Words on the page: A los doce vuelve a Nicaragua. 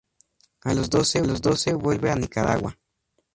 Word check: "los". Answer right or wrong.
right